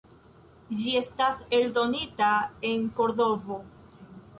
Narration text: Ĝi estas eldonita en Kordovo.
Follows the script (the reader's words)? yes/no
yes